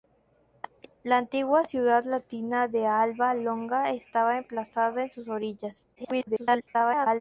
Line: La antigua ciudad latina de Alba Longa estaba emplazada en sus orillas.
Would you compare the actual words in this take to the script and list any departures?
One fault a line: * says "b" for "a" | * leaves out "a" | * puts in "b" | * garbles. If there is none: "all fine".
* garbles